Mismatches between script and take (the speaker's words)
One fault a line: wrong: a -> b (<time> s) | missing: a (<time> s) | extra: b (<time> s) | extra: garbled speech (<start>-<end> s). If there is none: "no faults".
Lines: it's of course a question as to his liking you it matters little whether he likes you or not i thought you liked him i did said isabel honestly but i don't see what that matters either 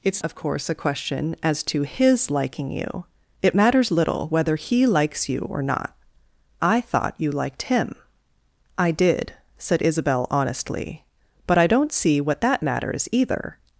no faults